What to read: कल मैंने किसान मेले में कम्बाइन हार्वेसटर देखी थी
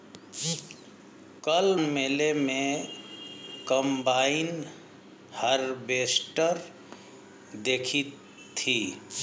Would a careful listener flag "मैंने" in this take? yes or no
yes